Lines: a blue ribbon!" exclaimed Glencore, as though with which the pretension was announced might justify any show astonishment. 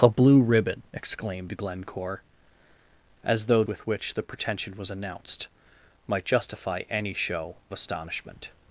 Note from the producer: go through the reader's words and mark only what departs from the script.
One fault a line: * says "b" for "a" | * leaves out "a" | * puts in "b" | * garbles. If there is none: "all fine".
all fine